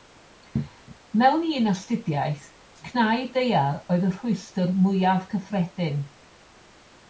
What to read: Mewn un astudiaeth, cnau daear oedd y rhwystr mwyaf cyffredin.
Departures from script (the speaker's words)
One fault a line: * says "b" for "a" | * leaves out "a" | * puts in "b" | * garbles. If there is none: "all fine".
all fine